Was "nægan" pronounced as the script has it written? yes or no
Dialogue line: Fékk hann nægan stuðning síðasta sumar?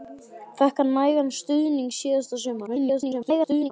yes